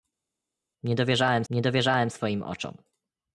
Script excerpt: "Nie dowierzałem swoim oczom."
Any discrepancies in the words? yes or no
yes